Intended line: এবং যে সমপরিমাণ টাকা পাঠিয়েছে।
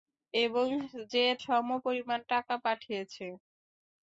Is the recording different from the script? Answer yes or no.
no